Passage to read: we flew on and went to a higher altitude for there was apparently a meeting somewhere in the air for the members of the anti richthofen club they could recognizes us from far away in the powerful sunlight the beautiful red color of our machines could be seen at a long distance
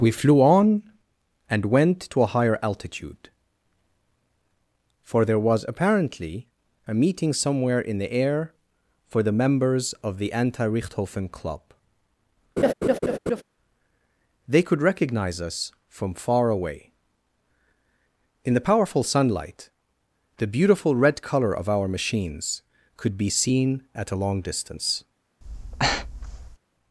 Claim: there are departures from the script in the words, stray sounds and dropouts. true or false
true